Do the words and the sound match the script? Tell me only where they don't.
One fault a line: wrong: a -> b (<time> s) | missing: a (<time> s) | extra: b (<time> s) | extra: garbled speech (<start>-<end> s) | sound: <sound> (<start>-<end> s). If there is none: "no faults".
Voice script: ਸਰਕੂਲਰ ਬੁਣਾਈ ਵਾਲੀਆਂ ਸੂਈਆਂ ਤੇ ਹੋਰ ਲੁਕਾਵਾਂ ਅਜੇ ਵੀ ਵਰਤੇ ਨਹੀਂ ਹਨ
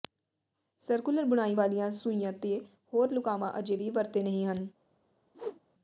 sound: whoosh (5.3-5.6 s)